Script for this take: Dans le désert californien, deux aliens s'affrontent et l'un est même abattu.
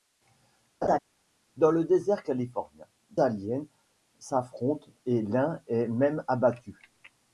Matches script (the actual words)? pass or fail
fail